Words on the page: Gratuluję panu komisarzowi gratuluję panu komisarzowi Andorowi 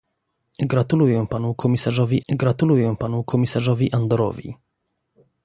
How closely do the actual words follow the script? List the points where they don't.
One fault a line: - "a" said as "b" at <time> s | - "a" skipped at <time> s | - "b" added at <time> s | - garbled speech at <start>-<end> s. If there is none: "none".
none